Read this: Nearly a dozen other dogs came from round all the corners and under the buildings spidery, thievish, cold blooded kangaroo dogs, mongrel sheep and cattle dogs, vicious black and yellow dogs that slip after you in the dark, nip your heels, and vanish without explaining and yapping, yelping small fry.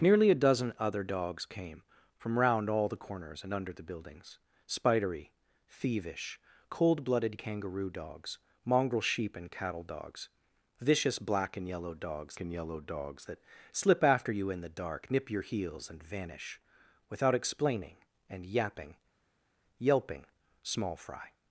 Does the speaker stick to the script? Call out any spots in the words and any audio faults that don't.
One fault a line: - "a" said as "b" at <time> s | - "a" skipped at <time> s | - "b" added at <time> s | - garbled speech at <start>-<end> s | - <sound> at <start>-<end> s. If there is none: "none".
- "and yellow dogs" added at 12.4 s